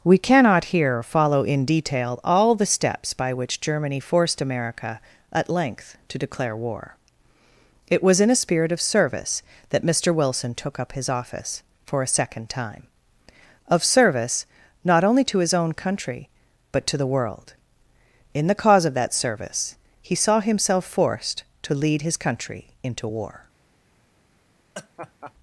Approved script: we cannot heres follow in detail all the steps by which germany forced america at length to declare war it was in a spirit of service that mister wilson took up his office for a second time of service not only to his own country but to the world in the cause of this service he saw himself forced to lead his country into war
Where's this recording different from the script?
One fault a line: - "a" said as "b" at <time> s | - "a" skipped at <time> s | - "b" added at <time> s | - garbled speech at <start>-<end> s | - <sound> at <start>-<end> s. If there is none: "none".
- "heres" said as "here" at 0.7 s
- "this" said as "that" at 18.9 s
- laugh at 24.7-25.3 s